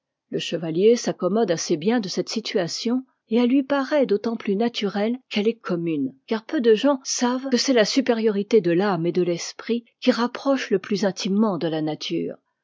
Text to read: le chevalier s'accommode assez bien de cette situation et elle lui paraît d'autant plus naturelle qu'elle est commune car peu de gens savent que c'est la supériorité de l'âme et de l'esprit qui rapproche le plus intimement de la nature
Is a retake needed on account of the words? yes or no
no